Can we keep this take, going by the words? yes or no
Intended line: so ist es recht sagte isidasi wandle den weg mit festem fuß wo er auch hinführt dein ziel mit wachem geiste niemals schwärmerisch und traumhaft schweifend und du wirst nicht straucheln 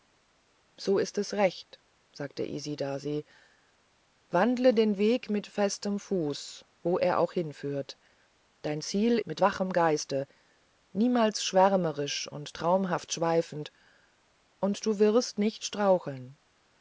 yes